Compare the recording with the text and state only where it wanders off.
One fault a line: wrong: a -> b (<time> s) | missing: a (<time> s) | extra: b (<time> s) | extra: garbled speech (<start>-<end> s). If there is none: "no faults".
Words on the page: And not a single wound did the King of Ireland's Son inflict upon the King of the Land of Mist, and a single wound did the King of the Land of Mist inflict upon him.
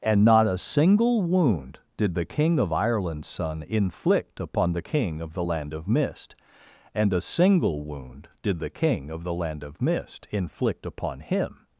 no faults